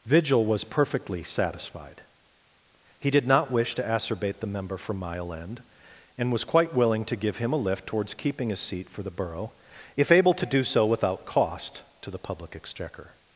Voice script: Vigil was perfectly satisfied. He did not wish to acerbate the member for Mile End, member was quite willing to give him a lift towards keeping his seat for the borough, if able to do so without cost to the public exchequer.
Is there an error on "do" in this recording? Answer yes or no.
no